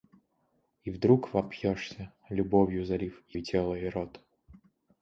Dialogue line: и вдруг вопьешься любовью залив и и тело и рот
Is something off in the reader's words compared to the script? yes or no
no